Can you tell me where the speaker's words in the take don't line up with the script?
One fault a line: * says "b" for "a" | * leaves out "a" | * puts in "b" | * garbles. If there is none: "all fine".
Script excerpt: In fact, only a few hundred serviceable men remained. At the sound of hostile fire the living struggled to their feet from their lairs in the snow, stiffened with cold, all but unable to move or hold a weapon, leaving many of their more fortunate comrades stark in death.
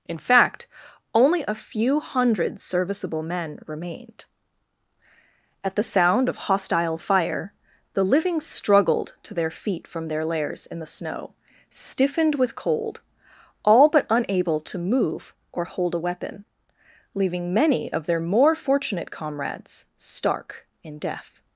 all fine